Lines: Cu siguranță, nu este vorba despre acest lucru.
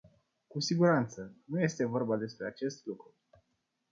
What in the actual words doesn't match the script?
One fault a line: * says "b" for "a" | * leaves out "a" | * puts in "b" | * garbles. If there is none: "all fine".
all fine